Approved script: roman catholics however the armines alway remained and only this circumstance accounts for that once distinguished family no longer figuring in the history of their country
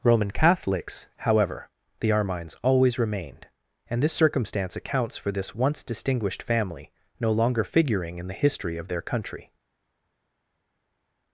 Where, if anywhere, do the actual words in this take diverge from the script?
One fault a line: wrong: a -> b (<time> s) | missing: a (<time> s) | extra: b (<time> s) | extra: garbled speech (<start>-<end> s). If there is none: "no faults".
wrong: alway -> always (2.6 s)
missing: only (4.0 s)
wrong: that -> this (5.3 s)